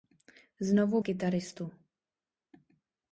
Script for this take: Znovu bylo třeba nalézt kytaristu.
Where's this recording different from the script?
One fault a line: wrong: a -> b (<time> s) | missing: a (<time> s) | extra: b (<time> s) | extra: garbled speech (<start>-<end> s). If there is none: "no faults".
missing: bylo třeba nalézt (1.0 s)